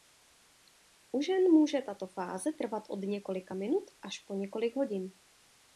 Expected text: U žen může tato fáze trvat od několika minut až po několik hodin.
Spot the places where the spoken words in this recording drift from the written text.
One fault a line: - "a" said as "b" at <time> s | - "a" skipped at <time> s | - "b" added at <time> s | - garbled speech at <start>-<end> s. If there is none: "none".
none